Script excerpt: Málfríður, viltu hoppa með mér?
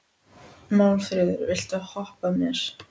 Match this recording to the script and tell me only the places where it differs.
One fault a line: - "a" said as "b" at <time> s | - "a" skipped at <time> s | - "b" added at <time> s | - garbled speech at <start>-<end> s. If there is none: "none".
- "með" skipped at 2.3 s